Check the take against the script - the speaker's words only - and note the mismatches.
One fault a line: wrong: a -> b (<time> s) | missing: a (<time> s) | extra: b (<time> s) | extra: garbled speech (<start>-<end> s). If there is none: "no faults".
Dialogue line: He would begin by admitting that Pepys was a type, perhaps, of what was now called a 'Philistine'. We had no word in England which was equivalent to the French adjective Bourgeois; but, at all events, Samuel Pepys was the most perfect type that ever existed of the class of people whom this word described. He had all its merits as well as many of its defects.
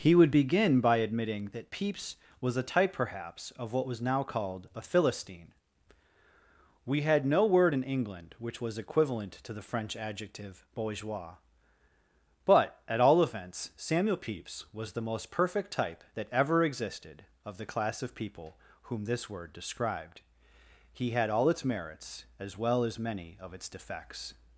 no faults